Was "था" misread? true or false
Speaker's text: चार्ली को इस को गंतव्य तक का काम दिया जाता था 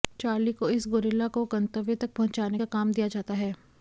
true